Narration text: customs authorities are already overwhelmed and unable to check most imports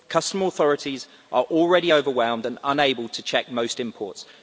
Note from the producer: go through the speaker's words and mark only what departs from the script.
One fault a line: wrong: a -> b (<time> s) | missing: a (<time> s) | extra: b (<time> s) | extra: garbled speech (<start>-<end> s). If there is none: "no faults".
no faults